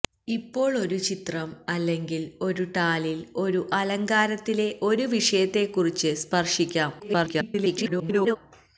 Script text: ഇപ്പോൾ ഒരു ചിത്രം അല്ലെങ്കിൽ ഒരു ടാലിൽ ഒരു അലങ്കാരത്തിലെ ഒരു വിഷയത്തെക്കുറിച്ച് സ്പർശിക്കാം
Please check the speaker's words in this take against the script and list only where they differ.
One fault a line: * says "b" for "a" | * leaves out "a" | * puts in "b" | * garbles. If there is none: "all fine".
* garbles